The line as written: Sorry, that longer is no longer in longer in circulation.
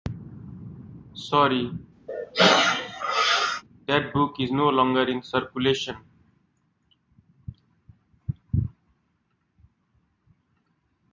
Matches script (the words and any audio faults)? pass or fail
fail